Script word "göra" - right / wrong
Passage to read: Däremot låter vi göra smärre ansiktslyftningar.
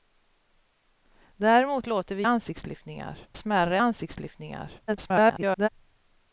wrong